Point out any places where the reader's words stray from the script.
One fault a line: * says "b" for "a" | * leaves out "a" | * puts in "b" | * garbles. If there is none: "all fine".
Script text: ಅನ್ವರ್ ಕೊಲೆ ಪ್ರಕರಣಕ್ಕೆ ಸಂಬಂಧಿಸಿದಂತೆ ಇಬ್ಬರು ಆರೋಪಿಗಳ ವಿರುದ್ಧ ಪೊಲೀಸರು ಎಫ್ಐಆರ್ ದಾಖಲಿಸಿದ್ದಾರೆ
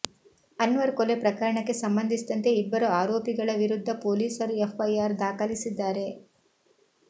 all fine